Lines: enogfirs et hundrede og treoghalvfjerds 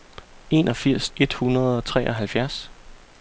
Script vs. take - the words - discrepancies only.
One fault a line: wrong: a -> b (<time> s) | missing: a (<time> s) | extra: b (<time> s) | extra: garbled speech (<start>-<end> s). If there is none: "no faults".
no faults